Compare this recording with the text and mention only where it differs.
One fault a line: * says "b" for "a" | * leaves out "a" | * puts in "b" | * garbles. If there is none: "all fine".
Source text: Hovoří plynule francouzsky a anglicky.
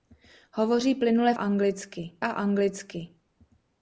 * says "anglicky" for "francouzsky"